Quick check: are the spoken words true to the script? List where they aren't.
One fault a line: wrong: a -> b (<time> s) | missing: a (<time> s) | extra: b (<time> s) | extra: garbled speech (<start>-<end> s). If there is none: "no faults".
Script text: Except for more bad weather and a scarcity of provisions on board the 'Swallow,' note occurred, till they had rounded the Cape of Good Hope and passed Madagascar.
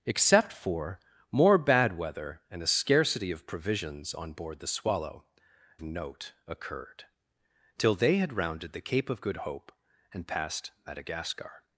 no faults